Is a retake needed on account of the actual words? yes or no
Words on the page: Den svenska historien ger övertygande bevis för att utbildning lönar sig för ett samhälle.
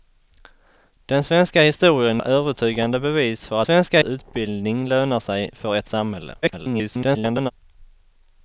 yes